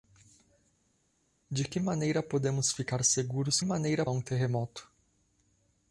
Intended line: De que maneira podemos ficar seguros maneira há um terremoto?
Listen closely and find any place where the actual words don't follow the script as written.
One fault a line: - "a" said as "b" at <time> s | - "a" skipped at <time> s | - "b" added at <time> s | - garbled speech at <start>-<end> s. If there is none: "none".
none